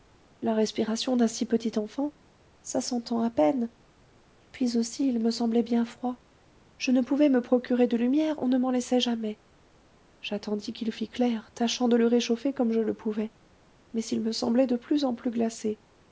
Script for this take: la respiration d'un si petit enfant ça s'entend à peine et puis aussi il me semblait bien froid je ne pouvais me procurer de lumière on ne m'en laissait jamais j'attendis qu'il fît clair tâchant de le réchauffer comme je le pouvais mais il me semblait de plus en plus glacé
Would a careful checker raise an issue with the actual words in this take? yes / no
no